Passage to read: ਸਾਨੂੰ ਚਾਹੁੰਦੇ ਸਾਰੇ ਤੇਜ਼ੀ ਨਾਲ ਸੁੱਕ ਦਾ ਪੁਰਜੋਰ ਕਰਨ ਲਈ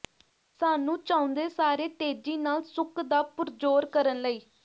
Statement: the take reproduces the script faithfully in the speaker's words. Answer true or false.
true